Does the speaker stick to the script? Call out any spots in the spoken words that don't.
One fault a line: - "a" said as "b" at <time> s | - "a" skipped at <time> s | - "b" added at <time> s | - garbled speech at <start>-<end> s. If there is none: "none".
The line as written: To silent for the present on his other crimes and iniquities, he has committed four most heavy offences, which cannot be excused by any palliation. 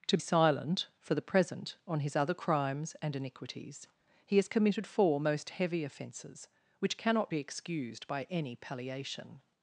none